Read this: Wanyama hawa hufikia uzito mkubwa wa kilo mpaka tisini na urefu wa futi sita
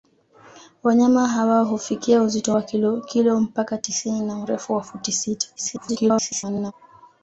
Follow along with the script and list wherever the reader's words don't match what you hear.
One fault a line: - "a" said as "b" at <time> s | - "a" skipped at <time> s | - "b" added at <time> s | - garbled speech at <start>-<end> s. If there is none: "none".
- "mkubwa" skipped at 2.6 s
- garbled speech at 5.6-6.7 s